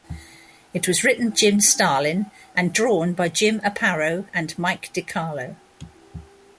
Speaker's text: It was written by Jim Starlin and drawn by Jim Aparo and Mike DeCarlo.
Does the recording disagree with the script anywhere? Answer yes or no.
yes